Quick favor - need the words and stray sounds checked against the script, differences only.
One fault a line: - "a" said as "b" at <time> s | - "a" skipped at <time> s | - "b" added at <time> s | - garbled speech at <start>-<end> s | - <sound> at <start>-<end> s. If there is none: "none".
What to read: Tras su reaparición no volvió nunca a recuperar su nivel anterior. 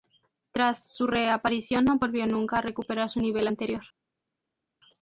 none